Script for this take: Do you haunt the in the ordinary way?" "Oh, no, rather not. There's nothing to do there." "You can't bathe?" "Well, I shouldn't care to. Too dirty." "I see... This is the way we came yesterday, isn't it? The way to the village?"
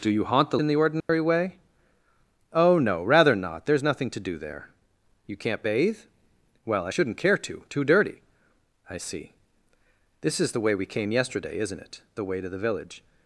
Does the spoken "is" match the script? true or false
true